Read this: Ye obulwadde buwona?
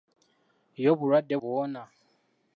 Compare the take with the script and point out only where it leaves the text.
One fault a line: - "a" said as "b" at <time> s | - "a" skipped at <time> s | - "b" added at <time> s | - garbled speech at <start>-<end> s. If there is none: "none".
none